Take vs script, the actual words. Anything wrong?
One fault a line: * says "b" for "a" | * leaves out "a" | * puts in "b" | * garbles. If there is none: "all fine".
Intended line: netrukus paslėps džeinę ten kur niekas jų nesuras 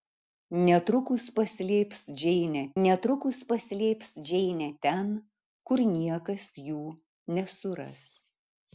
* puts in "netrukus paslėps džeinę"